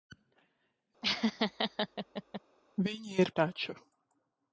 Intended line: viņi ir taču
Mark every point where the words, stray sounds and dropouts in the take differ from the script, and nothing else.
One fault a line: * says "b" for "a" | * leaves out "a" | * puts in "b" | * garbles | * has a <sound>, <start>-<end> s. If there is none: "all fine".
* has a laugh, 1.0-2.4 s